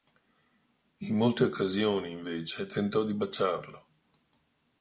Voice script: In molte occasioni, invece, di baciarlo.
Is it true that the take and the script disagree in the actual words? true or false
true